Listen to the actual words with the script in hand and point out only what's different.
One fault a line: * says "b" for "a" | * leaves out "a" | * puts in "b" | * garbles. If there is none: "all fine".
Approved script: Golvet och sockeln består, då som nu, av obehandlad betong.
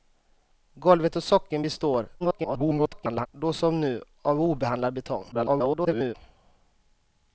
* garbles
* garbles